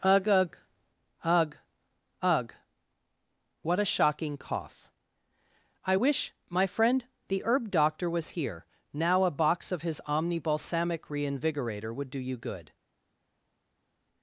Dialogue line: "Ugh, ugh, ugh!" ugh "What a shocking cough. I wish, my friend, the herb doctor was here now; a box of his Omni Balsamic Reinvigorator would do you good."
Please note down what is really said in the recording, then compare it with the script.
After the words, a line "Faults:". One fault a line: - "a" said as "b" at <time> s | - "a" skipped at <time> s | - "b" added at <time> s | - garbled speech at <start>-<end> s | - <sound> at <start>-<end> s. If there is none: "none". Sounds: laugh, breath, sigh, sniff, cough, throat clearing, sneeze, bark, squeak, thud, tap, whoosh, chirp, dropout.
"Ugh, ugh, ugh!" ugh "What a shocking cough. I wish, my friend, the herb doctor was here now; a box of his Omni Balsamic Reinvigorator would do you good."
Faults:
none